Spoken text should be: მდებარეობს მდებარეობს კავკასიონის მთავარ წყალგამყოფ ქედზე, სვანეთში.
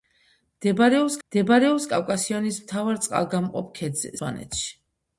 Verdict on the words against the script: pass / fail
pass